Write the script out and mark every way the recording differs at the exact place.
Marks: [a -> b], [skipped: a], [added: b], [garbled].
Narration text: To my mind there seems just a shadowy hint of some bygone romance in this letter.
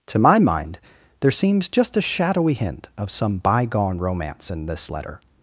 To my mind there seems just a shadowy hint of some bygone romance in this letter.